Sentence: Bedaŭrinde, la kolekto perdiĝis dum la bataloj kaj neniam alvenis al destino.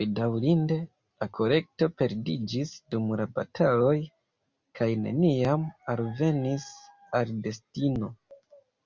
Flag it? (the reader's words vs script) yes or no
no